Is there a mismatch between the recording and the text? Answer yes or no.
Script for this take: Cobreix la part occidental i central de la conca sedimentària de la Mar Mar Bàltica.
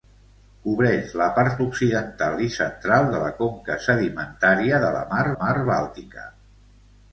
no